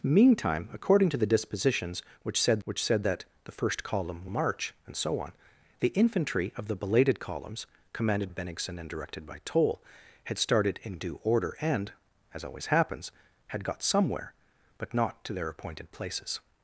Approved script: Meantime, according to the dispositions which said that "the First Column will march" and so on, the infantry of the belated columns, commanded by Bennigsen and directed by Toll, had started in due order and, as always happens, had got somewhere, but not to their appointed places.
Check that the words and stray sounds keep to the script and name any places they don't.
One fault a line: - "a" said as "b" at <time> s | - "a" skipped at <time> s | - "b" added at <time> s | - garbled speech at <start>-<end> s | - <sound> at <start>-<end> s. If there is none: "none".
- "which said" added at 2.6 s
- "will" skipped at 4.2 s
- "by" skipped at 8.3 s